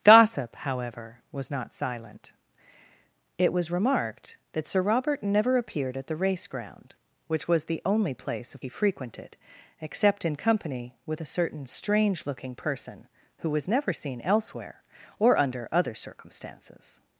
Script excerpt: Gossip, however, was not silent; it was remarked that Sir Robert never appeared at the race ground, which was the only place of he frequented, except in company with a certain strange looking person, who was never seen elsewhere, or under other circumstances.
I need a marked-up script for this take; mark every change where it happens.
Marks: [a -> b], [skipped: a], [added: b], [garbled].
Gossip, however, was not silent; it was remarked that Sir Robert never appeared at the race ground, which was the only place of he frequented, except in company with a certain strange looking person, who was never seen elsewhere, or under other circumstances.